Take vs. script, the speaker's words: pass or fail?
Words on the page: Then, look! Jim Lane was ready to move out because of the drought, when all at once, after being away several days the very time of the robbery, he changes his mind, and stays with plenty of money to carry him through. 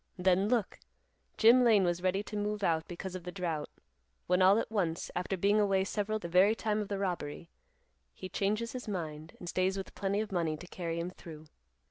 fail